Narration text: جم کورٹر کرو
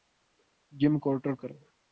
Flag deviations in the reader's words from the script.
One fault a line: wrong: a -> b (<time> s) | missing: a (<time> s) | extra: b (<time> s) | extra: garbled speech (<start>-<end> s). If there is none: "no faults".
no faults